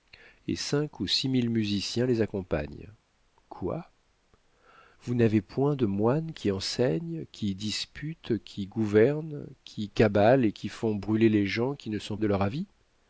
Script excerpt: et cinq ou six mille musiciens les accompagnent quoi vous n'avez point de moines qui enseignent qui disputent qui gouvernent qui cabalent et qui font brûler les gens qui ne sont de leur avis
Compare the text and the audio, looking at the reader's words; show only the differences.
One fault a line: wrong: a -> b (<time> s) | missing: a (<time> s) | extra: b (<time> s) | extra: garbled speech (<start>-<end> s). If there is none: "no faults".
no faults